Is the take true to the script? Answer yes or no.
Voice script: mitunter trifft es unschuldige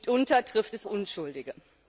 yes